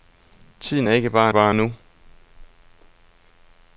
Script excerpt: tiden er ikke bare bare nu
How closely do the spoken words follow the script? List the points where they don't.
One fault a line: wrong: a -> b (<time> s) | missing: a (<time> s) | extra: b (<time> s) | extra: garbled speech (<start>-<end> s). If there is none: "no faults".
no faults